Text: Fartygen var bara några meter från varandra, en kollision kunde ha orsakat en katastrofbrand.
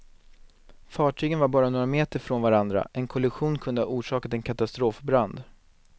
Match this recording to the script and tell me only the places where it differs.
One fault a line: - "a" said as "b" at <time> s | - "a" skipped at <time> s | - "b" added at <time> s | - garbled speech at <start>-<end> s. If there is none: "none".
none